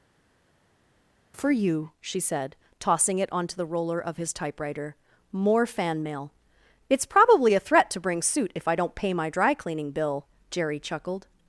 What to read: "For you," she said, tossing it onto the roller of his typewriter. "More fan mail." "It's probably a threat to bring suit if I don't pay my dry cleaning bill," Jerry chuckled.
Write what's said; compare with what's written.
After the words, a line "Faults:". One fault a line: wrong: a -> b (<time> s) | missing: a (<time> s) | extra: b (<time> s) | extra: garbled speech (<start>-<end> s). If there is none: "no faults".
"For you," she said, tossing it onto the roller of his typewriter. "More fan mail." "It's probably a threat to bring suit if I don't pay my dry cleaning bill," Jerry chuckled.
Faults:
no faults